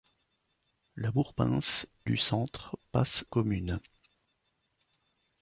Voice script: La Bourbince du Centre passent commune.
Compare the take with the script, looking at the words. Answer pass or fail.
pass